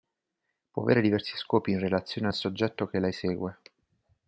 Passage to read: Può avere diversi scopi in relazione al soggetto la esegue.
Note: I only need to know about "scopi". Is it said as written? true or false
true